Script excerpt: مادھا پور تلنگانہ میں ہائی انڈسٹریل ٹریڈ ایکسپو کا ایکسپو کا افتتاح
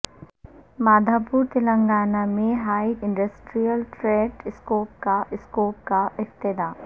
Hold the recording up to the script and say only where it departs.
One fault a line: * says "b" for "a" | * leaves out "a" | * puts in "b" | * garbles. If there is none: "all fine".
all fine